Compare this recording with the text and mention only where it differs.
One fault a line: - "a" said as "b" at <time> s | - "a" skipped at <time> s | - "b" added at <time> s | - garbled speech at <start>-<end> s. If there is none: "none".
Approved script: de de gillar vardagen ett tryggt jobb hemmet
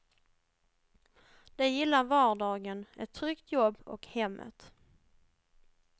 - "de" skipped at 1.7 s
- "och" added at 3.9 s